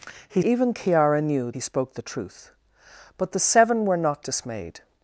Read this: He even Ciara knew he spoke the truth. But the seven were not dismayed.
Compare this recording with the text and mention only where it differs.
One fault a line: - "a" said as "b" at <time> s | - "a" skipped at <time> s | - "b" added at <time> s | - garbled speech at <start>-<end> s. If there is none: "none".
none